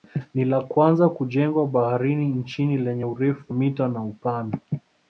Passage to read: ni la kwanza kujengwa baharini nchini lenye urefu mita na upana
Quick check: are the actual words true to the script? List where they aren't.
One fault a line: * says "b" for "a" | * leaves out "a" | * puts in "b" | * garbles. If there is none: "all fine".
all fine